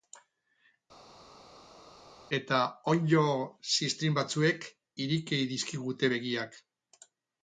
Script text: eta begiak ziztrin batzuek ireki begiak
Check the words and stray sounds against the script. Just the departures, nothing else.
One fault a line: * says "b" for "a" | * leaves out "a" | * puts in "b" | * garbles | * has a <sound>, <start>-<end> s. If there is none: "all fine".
* says "onddo" for "begiak"
* puts in "dizkigute"